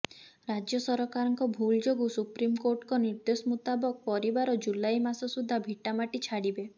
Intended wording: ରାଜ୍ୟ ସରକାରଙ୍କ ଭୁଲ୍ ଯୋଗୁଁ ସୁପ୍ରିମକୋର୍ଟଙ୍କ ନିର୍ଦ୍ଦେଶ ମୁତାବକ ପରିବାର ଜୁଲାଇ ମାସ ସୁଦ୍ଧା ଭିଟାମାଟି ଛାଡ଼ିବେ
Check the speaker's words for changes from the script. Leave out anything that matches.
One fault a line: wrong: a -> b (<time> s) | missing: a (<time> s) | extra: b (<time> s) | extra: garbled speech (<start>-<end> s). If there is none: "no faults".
no faults